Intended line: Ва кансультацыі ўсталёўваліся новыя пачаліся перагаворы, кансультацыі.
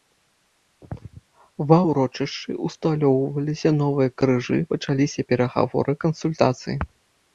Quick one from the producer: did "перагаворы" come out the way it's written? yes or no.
yes